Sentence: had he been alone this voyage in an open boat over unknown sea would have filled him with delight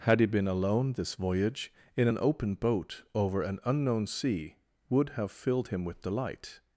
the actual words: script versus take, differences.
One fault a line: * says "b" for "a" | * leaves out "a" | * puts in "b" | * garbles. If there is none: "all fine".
* puts in "an"